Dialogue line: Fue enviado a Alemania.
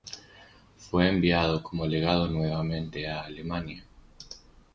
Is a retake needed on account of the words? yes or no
yes